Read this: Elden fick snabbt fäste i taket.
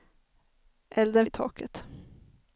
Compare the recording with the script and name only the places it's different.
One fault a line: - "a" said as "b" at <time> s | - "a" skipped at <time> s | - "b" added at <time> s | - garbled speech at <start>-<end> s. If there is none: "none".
- "fick snabbt fäste" skipped at 1.3 s